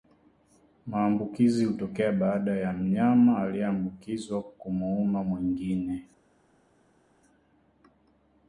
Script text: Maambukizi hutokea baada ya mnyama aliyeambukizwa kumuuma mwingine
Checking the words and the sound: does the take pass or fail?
pass